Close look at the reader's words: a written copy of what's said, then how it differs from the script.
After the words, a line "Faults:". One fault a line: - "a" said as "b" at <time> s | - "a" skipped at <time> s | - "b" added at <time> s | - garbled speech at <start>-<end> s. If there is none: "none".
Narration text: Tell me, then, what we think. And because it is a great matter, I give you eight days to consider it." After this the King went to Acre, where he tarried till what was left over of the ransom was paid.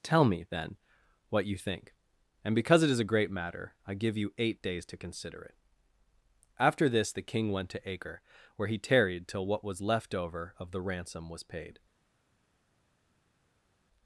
Tell me, then, what you think. And because it is a great matter, I give you eight days to consider it." After this the King went to Acre, where he tarried till what was left over of the ransom was paid.
Faults:
- "we" said as "you" at 1.4 s